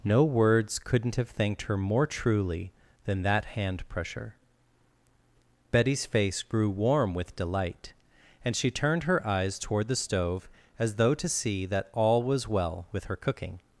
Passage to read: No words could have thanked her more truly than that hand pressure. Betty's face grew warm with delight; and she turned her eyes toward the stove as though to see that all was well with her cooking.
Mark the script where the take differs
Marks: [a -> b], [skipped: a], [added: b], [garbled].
No words [could -> couldn't] have thanked her more truly than that hand pressure. Betty's face grew warm with delight; and she turned her eyes toward the stove as though to see that all was well with her cooking.